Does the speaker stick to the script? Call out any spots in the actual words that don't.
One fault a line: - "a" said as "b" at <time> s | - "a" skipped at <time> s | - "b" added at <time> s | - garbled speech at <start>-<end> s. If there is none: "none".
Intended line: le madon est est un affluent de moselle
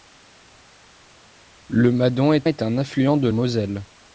none